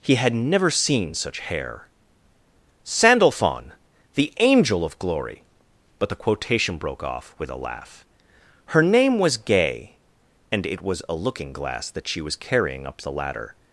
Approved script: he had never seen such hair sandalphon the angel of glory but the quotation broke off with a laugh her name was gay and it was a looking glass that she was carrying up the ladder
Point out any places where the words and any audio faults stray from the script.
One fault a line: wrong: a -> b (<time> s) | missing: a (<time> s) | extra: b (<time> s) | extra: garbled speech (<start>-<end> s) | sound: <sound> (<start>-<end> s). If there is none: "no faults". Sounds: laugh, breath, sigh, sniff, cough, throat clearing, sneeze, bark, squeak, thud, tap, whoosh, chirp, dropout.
no faults